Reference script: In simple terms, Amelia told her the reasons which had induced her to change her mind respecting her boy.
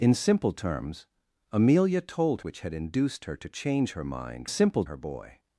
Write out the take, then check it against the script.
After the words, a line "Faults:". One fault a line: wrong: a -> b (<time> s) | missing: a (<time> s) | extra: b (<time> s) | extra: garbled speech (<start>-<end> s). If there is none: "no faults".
In simple terms, Amelia told which had induced her to change her mind simple her boy.
Faults:
missing: her the reasons (2.4 s)
wrong: respecting -> simple (4.5 s)